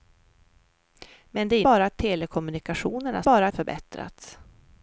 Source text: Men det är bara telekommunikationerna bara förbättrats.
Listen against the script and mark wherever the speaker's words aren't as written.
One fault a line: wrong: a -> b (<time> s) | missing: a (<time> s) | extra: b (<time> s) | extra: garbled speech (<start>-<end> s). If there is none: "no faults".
no faults